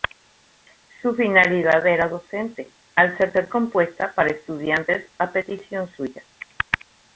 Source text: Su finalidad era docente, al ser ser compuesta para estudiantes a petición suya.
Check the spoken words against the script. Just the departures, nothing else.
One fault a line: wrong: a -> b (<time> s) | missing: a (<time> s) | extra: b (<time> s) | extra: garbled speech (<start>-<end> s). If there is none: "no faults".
no faults